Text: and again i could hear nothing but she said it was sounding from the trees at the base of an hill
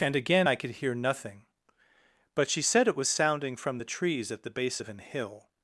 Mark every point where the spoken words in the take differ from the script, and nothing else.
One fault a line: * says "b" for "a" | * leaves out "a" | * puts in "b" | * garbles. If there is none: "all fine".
all fine